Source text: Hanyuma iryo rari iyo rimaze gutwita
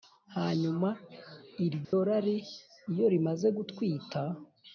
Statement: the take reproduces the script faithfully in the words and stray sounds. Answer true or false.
false